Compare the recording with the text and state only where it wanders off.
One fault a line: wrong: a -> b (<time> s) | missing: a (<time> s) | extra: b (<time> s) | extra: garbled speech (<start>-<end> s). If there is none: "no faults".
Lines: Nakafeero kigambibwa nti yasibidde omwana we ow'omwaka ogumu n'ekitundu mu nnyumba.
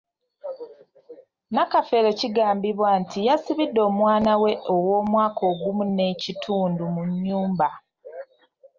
no faults